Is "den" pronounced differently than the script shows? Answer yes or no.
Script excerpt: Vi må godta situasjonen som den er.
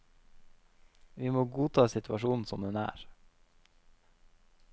no